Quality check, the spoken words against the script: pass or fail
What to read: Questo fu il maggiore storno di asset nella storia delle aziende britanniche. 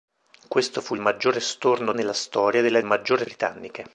fail